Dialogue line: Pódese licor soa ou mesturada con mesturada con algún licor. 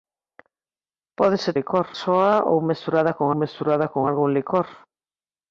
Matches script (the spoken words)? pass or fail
pass